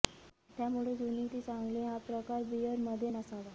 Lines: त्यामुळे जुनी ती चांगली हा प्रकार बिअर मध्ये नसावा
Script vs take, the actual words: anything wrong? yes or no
no